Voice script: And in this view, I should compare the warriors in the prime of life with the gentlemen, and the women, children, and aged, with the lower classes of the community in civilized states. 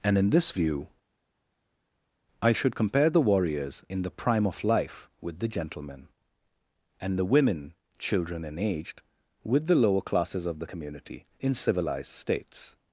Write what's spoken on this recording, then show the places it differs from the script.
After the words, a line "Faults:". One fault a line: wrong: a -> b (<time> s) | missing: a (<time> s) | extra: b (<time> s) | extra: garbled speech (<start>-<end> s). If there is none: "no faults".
And in this view, I should compare the warriors in the prime of life with the gentlemen, and the women, children, and aged, with the lower classes of the community in civilized states.
Faults:
no faults